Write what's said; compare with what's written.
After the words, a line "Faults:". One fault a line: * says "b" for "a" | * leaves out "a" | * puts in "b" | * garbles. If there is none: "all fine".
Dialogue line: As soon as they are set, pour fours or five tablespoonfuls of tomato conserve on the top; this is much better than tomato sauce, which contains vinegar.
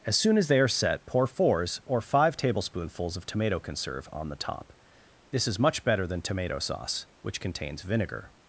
As soon as they are set, pour fours or five tablespoonfuls of tomato conserve on the top; this is much better than tomato sauce, which contains vinegar.
Faults:
all fine